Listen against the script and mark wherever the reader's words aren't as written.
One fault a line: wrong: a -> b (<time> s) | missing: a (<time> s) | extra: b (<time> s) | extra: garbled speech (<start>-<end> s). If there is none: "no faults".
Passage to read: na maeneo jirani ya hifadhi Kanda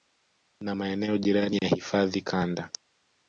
no faults